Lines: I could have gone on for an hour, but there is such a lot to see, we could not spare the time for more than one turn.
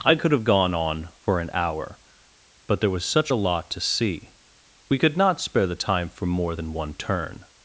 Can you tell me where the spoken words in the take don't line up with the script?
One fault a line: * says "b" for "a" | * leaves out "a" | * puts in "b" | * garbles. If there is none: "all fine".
* says "was" for "is"